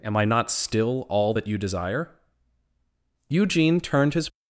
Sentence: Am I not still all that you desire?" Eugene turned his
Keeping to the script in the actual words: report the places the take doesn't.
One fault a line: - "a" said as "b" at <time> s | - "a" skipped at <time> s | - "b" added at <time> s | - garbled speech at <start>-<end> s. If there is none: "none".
none